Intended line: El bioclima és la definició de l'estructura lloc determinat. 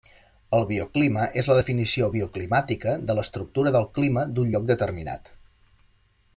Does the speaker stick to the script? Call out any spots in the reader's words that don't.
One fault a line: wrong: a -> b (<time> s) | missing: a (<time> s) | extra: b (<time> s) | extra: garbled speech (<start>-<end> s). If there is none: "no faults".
extra: bioclimàtica (2.1 s)
extra: del clima d'un (3.8 s)